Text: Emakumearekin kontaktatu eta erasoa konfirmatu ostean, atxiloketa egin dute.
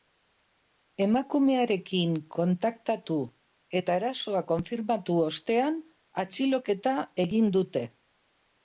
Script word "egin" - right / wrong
right